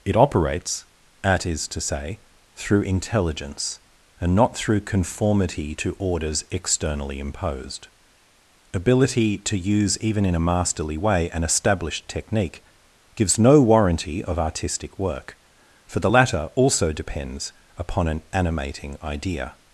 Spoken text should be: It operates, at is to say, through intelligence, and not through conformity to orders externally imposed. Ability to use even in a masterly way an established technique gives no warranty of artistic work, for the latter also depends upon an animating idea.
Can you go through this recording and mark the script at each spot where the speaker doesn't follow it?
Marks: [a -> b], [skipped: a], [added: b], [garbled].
It operates, at is to say, through intelligence, and not through conformity to orders externally imposed. Ability to use even in a masterly way an established technique gives no warranty of artistic work, for the latter also depends upon an animating idea.